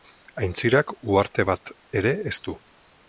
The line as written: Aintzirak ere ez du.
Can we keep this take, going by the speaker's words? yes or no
no